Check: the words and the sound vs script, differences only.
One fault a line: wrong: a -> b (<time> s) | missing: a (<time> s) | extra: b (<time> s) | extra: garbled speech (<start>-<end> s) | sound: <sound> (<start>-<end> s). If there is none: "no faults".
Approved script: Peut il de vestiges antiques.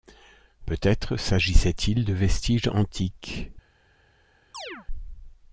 extra: être s'agissait (0.8 s)
sound: chirp (4.5-4.9 s)